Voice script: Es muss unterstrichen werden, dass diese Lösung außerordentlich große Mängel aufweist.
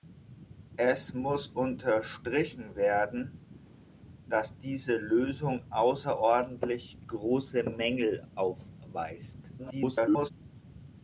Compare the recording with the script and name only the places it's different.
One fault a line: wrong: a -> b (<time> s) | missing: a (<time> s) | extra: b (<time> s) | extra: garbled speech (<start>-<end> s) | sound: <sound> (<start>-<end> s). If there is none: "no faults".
extra: garbled speech (9.6-10.3 s)